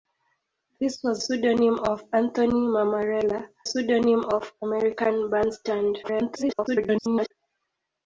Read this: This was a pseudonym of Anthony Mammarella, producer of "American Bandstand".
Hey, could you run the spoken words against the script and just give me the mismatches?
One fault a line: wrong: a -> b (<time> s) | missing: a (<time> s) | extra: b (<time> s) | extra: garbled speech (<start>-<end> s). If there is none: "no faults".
missing: a (1.2 s)
wrong: producer -> pseudonym (3.6 s)
extra: garbled speech (6.0-7.3 s)